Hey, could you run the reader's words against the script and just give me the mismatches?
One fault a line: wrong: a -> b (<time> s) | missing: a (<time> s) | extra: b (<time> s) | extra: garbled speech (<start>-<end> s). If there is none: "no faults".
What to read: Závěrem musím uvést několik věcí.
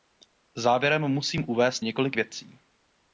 no faults